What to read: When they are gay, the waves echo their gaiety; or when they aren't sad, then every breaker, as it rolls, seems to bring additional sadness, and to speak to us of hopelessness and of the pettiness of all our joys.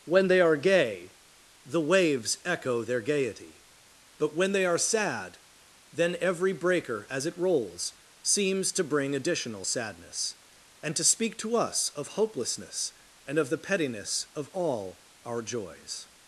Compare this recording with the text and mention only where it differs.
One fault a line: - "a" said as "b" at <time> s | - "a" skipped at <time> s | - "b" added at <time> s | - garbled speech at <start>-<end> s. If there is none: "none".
- "or" said as "but" at 4.2 s
- "aren't" said as "are" at 4.7 s